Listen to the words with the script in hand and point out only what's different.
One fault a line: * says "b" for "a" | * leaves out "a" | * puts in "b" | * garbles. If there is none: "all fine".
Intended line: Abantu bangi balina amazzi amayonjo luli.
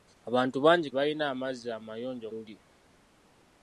all fine